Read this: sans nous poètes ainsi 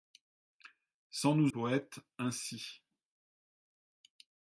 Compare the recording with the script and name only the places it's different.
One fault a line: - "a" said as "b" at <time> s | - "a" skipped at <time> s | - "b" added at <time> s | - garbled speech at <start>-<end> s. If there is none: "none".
none